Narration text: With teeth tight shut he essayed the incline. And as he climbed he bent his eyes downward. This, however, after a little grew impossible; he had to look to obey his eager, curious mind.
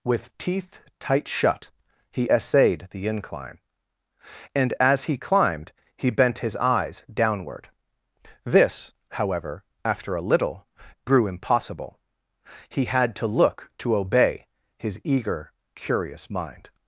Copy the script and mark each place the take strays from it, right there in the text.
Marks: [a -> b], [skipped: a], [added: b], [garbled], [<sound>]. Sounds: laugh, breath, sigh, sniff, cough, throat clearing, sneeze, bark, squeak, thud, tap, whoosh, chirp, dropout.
With teeth tight shut he essayed the incline. And as he climbed he bent his eyes downward. This, however, after a little grew impossible; he had to look to obey his eager, curious mind.